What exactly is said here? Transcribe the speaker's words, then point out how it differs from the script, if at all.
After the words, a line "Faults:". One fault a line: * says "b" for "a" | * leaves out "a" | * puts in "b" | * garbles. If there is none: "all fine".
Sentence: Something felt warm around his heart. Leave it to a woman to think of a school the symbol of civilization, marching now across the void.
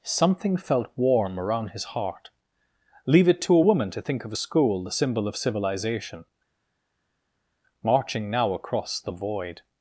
Something felt warm around his heart. Leave it to a woman to think of a school the symbol of civilization, marching now across the void.
Faults:
all fine